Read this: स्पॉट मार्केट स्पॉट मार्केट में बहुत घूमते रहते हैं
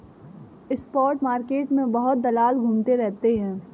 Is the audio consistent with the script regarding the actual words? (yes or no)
no